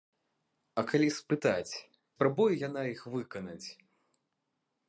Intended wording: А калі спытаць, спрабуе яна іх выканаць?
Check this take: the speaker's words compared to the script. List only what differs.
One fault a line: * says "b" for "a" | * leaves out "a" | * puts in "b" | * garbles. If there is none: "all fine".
all fine